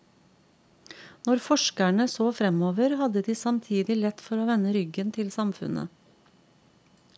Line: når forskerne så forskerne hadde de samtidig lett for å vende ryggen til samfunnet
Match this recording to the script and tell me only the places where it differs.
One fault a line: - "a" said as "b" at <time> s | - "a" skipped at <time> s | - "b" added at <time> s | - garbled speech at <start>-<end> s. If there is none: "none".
- "forskerne" said as "fremover" at 2.3 s